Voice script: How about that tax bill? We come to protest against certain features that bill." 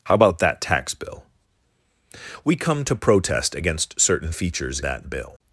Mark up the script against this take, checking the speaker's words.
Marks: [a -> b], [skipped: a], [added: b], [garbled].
How about that tax bill? We come to protest against certain features that bill."